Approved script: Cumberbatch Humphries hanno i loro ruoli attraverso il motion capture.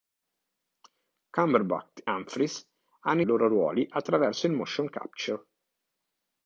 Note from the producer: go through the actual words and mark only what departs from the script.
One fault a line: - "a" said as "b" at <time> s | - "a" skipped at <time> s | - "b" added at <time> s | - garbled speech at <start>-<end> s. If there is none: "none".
none